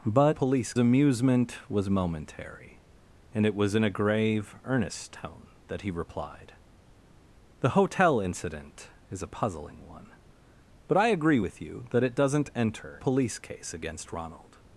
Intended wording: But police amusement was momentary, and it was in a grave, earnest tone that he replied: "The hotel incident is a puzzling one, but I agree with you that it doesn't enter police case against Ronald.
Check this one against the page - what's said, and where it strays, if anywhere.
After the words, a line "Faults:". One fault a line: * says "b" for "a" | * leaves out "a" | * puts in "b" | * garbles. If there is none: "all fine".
But police amusement was momentary, and it was in a grave, earnest tone that he replied: "The hotel incident is a puzzling one, but I agree with you that it doesn't enter police case against Ronald.
Faults:
all fine